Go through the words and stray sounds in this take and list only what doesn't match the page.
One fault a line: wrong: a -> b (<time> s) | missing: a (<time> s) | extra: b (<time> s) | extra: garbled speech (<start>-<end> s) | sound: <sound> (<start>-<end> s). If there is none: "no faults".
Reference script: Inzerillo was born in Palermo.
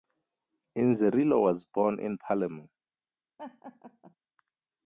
sound: laugh (3.4-4.2 s)